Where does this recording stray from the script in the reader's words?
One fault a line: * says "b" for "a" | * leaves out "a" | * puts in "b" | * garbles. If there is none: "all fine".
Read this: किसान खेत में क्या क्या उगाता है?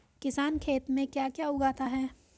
all fine